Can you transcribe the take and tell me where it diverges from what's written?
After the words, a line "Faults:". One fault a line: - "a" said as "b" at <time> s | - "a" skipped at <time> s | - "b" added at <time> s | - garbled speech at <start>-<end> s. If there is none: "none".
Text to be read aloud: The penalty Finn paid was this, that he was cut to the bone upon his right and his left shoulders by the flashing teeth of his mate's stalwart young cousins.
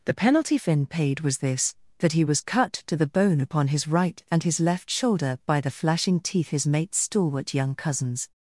The penalty Finn paid was this, that he was cut to the bone upon his right and his left shoulder by the flashing teeth his mate's stalwart young cousins.
Faults:
- "shoulders" said as "shoulder" at 4.9 s
- "of" skipped at 6.5 s